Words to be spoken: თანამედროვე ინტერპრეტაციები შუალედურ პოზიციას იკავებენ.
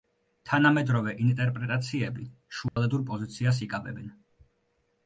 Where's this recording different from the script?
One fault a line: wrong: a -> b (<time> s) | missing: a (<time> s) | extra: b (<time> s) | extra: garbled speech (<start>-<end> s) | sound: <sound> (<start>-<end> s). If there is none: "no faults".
sound: dropout (2.7-2.8 s)